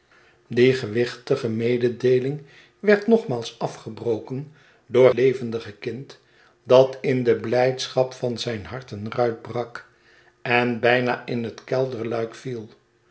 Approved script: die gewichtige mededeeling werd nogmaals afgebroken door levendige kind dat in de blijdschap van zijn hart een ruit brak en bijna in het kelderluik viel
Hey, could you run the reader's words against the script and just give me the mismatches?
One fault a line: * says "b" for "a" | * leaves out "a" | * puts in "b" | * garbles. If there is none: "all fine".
all fine